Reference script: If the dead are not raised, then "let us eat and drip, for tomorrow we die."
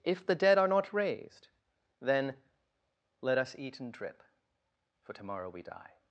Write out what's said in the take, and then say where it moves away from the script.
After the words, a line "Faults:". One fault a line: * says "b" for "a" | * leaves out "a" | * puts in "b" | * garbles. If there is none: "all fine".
If the dead are not raised, then "let us eat and drip, for tomorrow we die."
Faults:
all fine